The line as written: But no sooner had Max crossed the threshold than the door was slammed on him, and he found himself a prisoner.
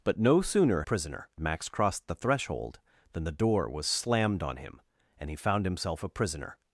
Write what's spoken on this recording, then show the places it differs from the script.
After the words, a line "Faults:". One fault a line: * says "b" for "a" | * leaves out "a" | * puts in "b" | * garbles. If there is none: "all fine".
But no sooner prisoner Max crossed the threshold than the door was slammed on him, and he found himself a prisoner.
Faults:
* says "prisoner" for "had"